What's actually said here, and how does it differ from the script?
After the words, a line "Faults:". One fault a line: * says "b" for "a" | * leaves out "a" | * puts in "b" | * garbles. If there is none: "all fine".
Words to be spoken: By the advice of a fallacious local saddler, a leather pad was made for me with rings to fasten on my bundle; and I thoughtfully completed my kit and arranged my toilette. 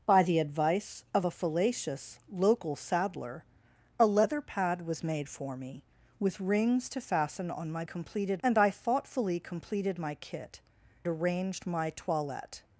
By the advice of a fallacious local saddler, a leather pad was made for me with rings to fasten on my completed; and I thoughtfully completed my kit arranged my toilette.
Faults:
* says "completed" for "bundle"
* leaves out "and"